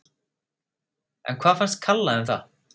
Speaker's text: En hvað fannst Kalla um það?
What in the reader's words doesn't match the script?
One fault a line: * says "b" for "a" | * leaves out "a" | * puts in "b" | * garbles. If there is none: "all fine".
all fine